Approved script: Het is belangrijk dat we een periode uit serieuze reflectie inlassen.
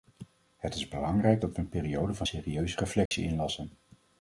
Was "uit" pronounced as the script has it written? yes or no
no